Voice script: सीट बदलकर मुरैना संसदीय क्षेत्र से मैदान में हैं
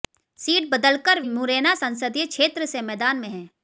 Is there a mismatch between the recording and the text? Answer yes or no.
no